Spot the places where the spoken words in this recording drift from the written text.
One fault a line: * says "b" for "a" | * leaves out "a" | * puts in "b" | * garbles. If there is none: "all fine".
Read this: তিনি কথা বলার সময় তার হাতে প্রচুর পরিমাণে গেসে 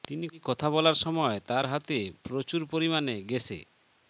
all fine